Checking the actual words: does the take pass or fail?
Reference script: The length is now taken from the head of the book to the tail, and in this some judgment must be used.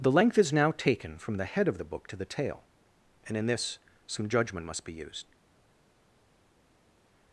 pass